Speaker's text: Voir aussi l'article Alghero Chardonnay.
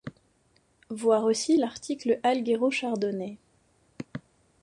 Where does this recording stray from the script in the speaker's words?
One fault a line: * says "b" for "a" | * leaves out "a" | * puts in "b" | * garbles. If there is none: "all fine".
all fine